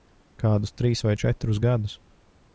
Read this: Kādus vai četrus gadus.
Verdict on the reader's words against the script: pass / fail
fail